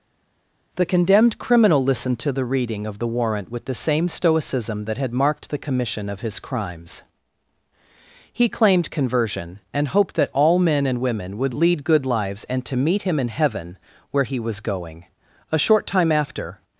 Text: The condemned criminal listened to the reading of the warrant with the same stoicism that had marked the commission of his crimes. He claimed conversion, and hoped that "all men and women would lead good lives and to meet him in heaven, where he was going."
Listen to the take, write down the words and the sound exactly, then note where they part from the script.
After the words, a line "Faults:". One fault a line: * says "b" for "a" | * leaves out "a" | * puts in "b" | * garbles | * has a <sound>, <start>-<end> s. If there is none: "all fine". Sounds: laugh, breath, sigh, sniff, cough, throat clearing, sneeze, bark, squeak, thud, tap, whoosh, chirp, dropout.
The condemned criminal listened to the reading of the warrant with the same stoicism that had marked the commission of his crimes. He claimed conversion, and hoped that "all men and women would lead good lives and to meet him in heaven, where he was going." A short time after
Faults:
* puts in "A short time after"